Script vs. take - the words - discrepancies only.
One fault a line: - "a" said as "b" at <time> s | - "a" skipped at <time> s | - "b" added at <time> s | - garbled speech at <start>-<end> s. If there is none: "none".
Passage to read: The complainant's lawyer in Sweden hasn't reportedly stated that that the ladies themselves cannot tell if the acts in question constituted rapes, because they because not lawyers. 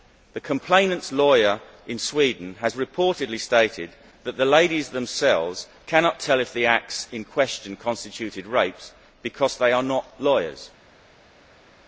- "hasn't" said as "has" at 2.6 s
- "that" skipped at 4.3 s
- "because" said as "are" at 9.7 s